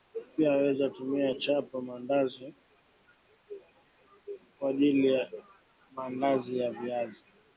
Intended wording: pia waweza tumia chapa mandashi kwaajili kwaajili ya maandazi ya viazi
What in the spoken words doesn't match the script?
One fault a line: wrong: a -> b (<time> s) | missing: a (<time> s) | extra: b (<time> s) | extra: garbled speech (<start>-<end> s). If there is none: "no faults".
missing: kwaajili (5.1 s)